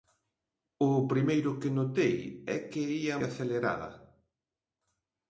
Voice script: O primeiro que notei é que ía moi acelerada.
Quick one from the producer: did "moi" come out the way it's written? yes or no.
no